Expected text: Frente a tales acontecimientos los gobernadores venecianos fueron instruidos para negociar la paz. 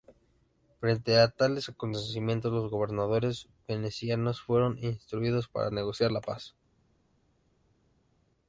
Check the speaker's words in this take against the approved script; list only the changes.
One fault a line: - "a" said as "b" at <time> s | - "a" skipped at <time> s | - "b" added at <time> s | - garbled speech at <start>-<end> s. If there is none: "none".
none